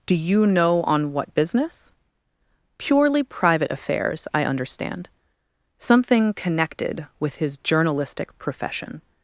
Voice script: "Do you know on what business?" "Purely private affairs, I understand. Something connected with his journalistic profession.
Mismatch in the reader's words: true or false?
false